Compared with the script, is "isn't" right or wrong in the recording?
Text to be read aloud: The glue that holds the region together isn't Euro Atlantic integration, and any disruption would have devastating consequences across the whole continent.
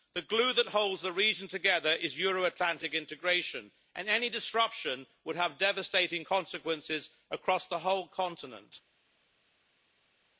wrong